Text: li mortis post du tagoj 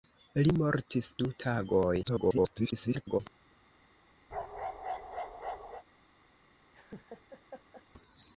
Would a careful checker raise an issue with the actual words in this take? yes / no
yes